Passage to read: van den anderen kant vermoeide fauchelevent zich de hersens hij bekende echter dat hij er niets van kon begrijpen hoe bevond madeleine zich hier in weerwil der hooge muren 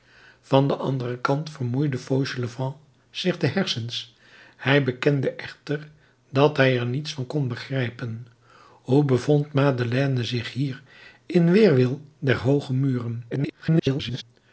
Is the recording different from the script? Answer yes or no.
yes